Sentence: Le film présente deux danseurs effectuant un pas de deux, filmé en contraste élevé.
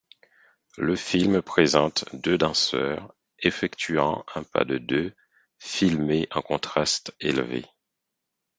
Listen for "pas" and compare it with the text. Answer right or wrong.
right